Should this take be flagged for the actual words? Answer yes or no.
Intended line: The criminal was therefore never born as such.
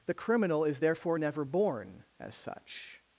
yes